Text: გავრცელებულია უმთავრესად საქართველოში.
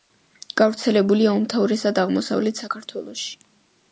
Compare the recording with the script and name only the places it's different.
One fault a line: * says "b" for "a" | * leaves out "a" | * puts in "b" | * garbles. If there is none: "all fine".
* puts in "აღმოსავლეთ"